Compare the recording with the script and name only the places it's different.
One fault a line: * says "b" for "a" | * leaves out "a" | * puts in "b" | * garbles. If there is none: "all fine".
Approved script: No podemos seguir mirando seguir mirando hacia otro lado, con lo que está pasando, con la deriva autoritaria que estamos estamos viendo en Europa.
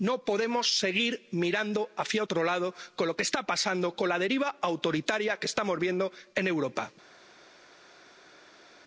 * leaves out "seguir mirando"
* leaves out "estamos"